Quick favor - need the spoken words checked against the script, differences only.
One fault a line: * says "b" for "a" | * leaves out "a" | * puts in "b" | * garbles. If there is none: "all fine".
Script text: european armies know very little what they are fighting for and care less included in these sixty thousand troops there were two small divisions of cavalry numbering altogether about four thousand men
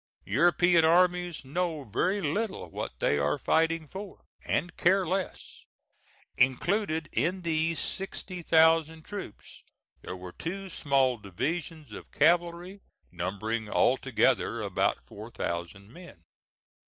all fine